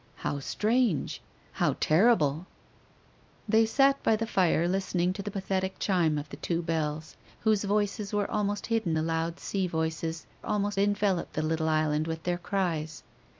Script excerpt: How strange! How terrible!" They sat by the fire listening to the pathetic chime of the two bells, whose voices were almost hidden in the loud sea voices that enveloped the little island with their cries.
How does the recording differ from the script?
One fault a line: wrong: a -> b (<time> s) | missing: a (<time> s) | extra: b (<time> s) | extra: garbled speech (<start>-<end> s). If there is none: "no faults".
missing: in (9.0 s)
wrong: that -> almost (10.5 s)